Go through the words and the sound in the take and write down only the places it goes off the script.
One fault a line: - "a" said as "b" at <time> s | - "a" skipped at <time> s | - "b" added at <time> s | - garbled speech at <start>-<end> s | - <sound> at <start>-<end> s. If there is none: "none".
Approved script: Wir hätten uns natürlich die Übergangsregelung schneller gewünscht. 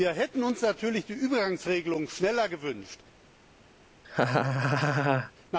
- laugh at 4.0-5.3 s